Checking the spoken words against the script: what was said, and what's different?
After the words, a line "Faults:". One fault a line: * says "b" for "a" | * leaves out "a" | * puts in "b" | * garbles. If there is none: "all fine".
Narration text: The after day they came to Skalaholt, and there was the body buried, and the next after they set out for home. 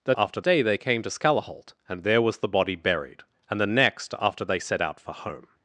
The after day they came to Skalaholt, and there was the body buried, and the next after they set out for home.
Faults:
all fine